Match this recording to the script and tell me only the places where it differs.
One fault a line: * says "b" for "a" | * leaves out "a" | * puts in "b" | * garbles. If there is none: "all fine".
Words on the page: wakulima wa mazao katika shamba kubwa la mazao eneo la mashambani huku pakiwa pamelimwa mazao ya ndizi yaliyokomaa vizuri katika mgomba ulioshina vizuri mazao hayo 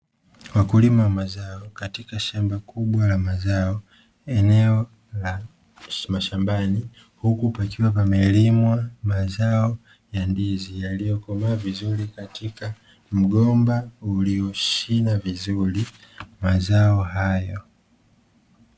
all fine